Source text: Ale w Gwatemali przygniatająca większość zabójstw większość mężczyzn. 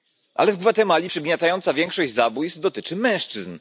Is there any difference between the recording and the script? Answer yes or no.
yes